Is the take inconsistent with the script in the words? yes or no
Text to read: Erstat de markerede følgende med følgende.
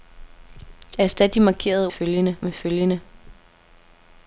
no